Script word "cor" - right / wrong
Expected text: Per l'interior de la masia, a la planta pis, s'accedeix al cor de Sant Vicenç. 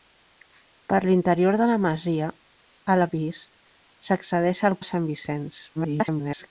wrong